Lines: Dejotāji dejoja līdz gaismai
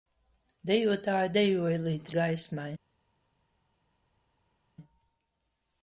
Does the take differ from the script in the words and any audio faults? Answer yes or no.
no